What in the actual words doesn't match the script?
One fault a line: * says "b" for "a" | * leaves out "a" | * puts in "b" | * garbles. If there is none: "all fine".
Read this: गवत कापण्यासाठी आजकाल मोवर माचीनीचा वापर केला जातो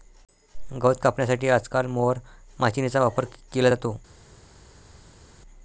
all fine